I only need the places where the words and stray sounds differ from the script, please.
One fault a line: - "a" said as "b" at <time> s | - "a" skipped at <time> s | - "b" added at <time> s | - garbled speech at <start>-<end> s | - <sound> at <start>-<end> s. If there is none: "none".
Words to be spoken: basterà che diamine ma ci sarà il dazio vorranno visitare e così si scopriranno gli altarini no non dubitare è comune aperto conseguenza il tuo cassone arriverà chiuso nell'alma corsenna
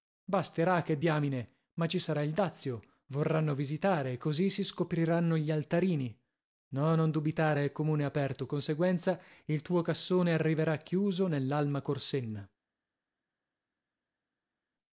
none